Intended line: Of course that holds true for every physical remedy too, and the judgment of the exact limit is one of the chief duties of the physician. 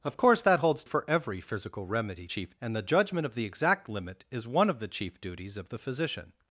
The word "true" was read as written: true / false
false